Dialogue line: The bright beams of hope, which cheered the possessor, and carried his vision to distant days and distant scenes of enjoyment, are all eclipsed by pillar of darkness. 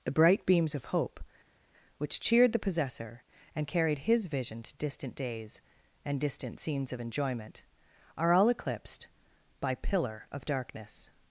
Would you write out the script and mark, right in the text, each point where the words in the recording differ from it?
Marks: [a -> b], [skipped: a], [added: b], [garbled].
The bright beams of hope, which cheered the possessor, and carried his vision to distant days and distant scenes of enjoyment, are all eclipsed by pillar of darkness.